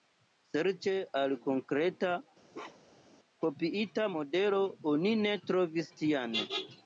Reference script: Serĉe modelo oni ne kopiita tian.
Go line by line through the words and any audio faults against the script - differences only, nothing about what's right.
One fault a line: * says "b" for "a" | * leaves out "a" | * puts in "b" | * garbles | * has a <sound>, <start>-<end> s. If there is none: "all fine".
* puts in "al konkreta kopiita"
* has a bark, 2.5-3.1 s
* says "trovis" for "kopiita"